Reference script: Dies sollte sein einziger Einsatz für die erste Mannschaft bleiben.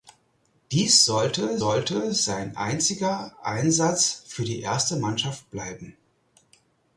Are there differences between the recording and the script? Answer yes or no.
yes